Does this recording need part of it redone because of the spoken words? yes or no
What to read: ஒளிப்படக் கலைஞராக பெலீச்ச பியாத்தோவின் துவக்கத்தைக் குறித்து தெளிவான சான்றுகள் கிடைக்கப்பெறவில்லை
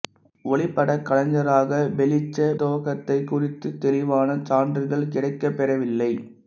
yes